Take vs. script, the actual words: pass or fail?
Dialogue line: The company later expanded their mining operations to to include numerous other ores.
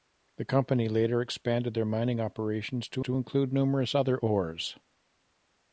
pass